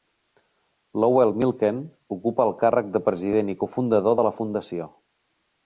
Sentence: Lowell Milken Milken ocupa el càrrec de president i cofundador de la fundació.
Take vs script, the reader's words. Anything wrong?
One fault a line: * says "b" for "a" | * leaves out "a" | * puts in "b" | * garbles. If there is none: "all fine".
* leaves out "Milken"